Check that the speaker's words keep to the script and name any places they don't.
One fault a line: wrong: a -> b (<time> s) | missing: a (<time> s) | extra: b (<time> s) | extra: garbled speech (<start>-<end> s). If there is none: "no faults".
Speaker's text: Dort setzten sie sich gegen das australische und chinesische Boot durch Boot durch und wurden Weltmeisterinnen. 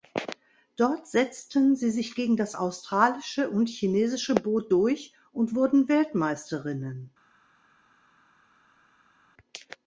missing: Boot durch (5.1 s)